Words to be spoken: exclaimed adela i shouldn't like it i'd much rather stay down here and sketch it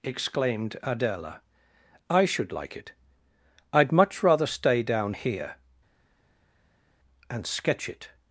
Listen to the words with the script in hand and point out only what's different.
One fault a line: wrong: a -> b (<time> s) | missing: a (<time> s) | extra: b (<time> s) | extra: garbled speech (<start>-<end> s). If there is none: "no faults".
wrong: shouldn't -> should (2.2 s)